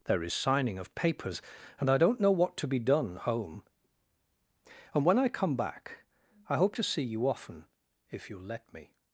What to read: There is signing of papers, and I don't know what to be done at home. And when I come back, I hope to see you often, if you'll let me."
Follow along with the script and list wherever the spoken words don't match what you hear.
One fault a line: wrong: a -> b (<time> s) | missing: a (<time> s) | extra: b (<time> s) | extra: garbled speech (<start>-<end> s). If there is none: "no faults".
missing: at (3.2 s)